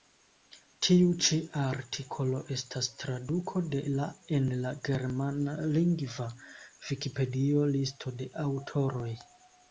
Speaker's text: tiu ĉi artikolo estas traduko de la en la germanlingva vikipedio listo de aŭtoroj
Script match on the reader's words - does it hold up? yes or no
yes